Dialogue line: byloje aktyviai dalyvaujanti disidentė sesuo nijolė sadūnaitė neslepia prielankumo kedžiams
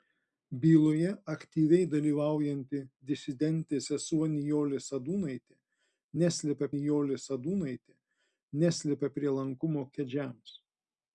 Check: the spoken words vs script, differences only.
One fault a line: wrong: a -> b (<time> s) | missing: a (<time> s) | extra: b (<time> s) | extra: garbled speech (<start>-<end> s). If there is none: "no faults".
extra: nijolė sadūnaitė neslepia (6.7 s)